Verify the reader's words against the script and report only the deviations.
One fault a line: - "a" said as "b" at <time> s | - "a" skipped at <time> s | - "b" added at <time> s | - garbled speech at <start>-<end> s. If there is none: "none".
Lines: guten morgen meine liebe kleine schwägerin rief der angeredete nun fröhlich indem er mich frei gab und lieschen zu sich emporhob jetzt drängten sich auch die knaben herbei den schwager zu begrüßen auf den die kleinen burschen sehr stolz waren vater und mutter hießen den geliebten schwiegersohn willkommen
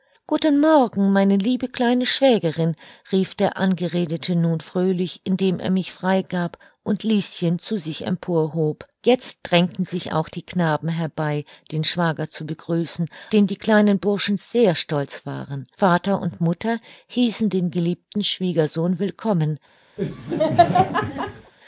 - "auf" skipped at 13.1 s